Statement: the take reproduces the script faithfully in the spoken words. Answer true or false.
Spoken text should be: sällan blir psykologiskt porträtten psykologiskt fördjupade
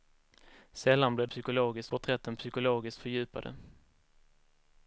true